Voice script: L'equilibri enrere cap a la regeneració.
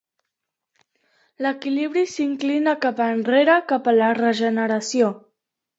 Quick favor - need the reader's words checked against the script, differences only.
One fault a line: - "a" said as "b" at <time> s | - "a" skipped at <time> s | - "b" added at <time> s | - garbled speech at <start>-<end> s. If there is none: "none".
- "s'inclina cap" added at 2.1 s